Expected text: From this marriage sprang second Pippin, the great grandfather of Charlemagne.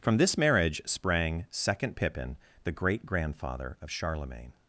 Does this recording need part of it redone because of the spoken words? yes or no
no